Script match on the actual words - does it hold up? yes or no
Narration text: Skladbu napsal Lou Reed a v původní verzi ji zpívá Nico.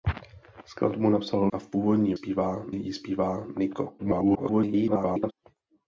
no